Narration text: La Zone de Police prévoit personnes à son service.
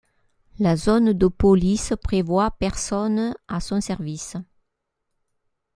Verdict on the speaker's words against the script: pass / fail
pass